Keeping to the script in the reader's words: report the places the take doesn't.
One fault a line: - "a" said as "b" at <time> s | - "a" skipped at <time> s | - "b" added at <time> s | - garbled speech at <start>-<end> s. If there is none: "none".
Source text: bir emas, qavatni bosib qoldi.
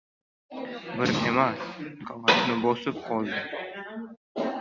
none